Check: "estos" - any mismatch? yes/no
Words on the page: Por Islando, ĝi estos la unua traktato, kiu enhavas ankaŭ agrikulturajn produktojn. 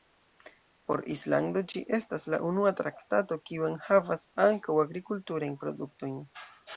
yes